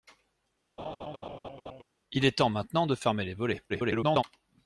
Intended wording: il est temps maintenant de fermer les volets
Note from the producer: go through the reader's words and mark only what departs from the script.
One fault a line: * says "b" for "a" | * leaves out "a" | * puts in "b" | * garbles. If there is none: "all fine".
* garbles